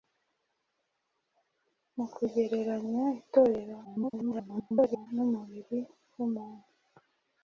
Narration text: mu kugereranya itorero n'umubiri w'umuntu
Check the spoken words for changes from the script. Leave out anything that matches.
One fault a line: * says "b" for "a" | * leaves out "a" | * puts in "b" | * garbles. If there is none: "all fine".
* garbles